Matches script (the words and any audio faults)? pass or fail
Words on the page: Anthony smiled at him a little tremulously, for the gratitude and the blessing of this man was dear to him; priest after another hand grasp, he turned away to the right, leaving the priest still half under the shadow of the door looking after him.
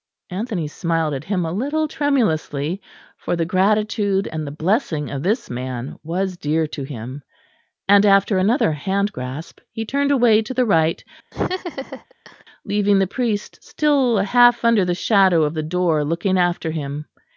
fail